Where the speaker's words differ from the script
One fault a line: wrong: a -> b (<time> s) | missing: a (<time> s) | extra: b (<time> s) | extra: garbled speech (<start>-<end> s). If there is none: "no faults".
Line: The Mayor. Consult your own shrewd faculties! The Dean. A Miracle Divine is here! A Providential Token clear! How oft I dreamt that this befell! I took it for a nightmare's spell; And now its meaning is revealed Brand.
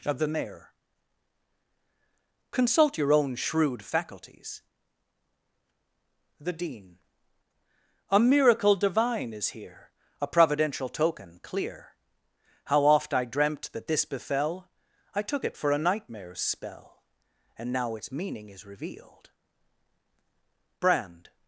extra: of (0.1 s)